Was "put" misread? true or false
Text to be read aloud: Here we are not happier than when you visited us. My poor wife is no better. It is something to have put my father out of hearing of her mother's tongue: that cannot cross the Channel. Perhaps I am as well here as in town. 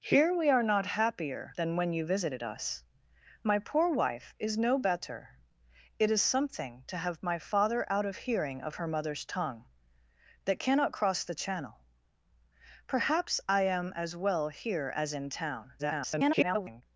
true